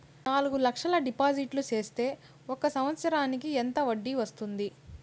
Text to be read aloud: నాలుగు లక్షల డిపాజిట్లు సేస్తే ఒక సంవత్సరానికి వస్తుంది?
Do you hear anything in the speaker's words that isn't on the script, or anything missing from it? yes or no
yes